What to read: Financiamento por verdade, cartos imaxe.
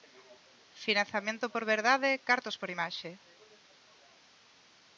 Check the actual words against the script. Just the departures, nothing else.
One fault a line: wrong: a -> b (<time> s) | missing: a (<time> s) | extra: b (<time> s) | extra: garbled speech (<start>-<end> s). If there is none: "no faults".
extra: por (2.6 s)